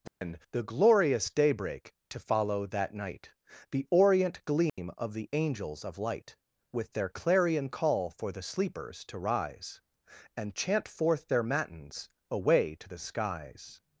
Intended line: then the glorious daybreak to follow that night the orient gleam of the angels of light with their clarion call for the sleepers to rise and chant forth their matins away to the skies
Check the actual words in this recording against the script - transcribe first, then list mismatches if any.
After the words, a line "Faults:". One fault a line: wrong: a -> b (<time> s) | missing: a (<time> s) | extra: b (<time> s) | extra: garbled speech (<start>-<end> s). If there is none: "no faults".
then the glorious daybreak to follow that night the orient gleam of the angels of light with their clarion call for the sleepers to rise and chant forth their matins away to the skies
Faults:
no faults